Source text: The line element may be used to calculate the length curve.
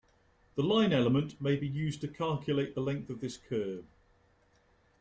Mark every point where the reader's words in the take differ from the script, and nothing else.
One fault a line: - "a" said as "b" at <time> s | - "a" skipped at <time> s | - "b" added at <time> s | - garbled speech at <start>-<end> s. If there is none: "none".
- "of this" added at 3.1 s